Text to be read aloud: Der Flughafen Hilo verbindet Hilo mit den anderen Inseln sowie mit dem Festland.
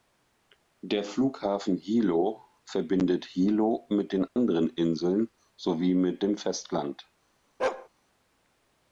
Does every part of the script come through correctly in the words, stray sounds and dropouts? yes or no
no